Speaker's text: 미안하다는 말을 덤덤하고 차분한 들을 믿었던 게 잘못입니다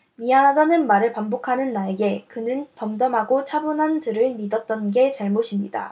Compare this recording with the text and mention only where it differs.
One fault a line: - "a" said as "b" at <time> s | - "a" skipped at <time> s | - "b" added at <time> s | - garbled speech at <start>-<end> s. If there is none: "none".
- "반복하는 나에게 그는" added at 1.1 s